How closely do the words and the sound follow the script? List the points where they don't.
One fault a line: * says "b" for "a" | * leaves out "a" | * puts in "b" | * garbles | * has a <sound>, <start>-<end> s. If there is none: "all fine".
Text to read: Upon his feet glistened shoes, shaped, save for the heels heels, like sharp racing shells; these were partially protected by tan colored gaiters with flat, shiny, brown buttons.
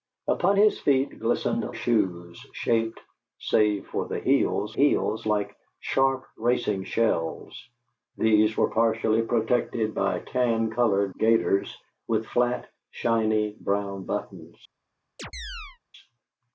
* has a chirp, 15.2-15.8 s